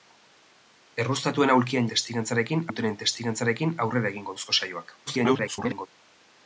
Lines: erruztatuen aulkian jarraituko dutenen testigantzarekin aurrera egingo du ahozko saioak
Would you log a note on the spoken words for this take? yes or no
yes